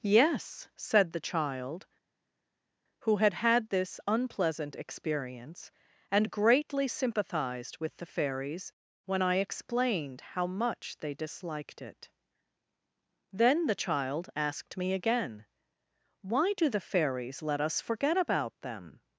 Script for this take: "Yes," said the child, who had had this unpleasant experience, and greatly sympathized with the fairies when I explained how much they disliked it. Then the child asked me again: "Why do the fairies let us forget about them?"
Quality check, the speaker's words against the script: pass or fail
pass